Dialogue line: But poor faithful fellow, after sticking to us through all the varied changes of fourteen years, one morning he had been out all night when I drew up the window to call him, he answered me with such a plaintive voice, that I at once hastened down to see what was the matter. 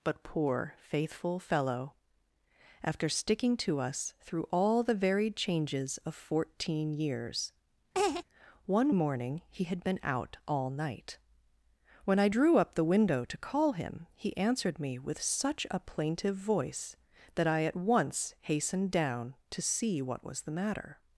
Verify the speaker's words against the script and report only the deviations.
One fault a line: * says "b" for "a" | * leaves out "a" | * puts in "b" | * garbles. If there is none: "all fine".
all fine